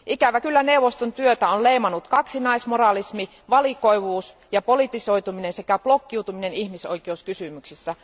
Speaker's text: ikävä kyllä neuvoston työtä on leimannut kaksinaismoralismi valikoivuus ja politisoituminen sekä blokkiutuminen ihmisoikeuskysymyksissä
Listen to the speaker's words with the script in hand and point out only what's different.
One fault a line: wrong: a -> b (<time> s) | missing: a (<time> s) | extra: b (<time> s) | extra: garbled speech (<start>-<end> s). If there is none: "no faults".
no faults